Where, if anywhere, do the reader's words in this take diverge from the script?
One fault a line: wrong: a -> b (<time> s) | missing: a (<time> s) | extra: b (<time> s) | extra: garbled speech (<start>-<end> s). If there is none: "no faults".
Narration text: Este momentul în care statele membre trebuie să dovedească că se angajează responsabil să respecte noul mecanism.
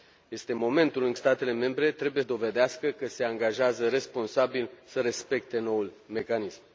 missing: care (1.1 s)
missing: să (2.2 s)